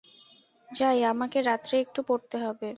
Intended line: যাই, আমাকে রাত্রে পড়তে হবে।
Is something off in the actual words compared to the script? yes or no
yes